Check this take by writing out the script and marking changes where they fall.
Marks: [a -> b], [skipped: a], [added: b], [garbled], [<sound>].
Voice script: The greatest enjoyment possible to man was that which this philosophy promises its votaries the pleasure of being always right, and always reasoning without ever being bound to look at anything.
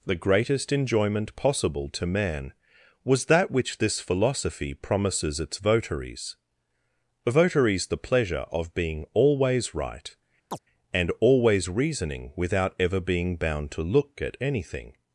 The greatest enjoyment possible to man was that which this philosophy promises its votaries [added: votaries] the pleasure of being always right, [chirp] and always reasoning without ever being bound to look at anything.